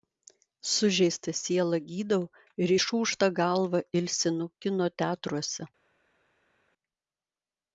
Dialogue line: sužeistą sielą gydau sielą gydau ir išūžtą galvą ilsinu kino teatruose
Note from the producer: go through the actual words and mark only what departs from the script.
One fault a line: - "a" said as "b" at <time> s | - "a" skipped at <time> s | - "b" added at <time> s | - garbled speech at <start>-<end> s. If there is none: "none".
- "sielą gydau" skipped at 2.2 s